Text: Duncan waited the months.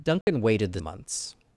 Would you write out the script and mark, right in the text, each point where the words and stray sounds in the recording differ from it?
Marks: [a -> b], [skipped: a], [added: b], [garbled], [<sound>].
Duncan [dropout] waited the months.